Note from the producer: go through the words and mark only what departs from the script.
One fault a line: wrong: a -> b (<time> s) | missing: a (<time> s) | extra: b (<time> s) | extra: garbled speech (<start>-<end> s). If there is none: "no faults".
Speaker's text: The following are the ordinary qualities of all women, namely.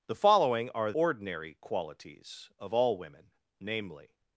missing: the (0.9 s)